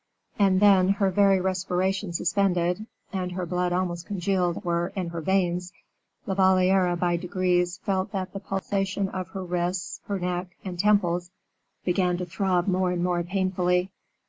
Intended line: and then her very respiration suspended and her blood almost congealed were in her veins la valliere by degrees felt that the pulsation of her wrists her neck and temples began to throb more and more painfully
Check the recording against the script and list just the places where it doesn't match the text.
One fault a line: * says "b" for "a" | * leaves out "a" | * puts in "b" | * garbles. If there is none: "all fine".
all fine